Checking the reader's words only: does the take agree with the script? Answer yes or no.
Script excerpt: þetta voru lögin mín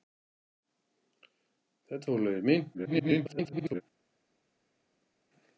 no